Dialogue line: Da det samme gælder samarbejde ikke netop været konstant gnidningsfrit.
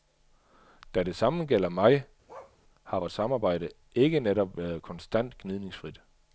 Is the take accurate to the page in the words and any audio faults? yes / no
no